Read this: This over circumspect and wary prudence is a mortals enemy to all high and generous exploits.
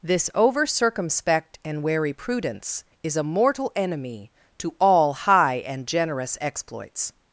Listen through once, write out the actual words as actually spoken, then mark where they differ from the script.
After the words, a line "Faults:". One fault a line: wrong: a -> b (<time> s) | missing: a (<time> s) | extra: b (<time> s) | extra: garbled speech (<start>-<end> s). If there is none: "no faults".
This over circumspect and wary prudence is a mortal enemy to all high and generous exploits.
Faults:
wrong: mortals -> mortal (3.2 s)